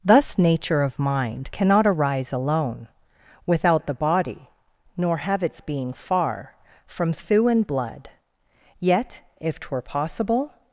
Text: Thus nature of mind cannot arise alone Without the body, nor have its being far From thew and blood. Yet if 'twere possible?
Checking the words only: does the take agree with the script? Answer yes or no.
yes